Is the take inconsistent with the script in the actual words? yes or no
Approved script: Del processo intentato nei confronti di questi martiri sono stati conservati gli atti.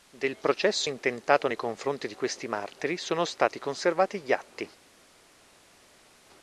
no